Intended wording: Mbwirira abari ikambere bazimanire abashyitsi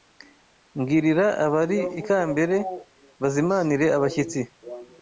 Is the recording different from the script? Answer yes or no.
no